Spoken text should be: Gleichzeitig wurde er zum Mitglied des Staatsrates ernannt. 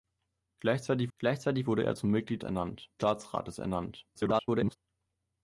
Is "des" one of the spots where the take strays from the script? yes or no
yes